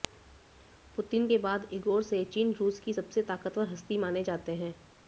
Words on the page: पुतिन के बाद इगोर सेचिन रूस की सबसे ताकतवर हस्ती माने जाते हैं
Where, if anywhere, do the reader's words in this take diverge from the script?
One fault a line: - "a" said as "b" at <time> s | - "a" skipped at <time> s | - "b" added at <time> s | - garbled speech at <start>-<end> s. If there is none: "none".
none